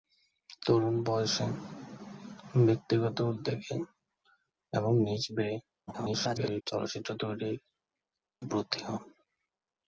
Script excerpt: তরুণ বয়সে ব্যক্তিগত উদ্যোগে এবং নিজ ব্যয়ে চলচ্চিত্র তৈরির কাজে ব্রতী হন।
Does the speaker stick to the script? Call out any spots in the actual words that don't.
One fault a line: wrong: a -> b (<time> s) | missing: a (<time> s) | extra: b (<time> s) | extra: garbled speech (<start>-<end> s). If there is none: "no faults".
extra: garbled speech (5.9-6.6 s)
missing: কাজে (7.6 s)